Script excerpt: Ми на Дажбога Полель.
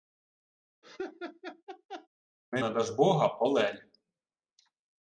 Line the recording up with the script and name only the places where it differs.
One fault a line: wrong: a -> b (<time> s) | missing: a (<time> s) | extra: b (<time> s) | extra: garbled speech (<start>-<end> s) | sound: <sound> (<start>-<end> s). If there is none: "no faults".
sound: laugh (0.8-2.1 s)